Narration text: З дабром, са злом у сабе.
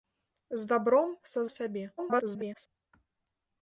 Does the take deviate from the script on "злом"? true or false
true